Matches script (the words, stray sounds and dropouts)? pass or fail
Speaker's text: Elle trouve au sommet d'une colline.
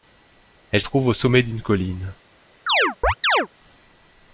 fail